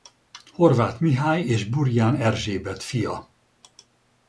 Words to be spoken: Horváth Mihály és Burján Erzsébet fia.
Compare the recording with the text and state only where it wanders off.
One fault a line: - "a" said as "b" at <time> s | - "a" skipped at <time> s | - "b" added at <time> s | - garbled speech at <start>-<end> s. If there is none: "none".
none